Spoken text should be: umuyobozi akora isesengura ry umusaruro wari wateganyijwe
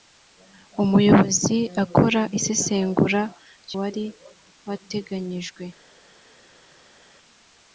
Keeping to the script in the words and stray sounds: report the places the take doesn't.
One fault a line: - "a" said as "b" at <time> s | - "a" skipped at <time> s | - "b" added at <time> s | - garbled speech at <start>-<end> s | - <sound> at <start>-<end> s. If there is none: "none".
- "umusaruro" skipped at 3.7 s